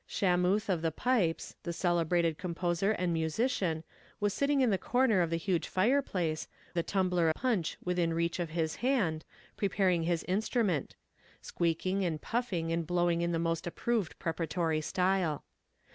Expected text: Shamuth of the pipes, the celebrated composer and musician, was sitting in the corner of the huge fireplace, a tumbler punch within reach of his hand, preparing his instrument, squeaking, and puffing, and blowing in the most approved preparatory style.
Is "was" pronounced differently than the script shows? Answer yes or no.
no